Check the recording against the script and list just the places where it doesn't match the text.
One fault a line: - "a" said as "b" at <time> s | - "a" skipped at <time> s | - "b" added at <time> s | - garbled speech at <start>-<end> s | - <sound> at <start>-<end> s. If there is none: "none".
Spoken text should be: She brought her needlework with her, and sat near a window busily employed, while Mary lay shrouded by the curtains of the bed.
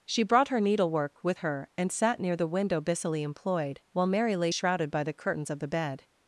- "a" said as "the" at 2.4 s